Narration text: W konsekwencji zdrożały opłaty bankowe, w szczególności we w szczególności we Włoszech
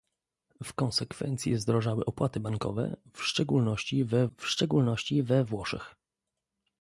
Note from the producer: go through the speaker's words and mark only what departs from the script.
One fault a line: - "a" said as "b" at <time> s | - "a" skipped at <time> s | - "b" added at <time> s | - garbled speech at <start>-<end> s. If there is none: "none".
none